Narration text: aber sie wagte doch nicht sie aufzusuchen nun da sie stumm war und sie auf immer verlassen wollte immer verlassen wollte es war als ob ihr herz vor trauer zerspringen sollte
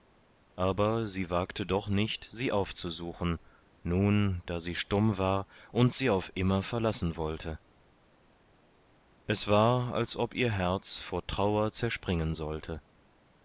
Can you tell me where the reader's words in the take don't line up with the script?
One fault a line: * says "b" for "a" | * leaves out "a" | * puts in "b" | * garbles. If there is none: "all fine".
* leaves out "immer verlassen wollte"